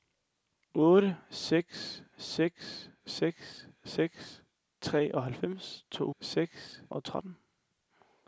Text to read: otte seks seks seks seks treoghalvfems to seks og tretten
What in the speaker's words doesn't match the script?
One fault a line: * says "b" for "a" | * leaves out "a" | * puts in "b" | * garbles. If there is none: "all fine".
all fine